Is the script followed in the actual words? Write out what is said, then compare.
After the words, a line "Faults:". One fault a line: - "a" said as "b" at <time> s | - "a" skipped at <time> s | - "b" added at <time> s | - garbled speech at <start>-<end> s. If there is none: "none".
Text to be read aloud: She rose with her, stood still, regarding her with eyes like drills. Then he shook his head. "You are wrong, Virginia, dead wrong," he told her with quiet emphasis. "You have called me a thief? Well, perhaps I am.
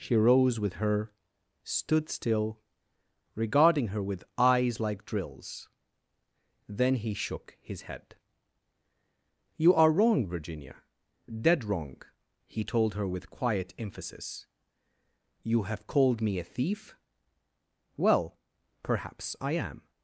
She rose with her, stood still, regarding her with eyes like drills. Then he shook his head. "You are wrong, Virginia, dead wrong," he told her with quiet emphasis. "You have called me a thief? Well, perhaps I am.
Faults:
none